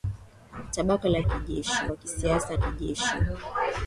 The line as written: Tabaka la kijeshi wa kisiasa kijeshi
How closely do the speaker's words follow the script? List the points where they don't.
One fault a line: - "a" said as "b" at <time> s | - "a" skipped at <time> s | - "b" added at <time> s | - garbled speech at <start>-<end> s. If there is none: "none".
none